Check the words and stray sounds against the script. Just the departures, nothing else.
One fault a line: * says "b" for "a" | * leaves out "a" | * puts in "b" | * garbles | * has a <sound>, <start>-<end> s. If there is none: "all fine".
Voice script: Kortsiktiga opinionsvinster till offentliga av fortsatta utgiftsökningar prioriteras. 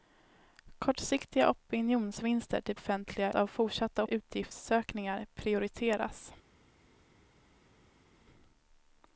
all fine